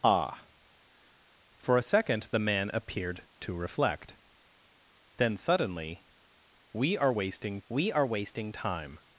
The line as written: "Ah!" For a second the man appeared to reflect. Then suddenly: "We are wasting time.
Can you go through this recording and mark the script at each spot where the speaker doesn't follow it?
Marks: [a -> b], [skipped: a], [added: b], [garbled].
"Ah!" For a second the man appeared to reflect. Then suddenly: "We are wasting [added: we are wasting] time.